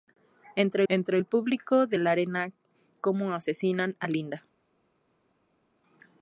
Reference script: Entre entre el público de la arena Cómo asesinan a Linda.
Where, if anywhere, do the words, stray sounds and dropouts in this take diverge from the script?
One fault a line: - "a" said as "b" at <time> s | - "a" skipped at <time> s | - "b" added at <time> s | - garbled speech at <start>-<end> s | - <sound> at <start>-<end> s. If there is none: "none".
none